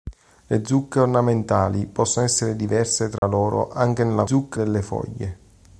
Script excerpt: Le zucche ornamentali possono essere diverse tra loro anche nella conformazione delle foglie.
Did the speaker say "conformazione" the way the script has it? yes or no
no